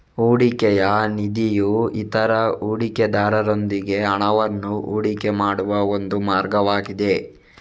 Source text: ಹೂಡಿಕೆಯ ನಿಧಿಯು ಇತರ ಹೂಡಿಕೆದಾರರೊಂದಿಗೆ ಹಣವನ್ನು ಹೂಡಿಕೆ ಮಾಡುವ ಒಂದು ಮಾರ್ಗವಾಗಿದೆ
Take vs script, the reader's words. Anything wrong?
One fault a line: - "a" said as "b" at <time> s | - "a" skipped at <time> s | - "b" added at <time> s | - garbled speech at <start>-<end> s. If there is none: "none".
none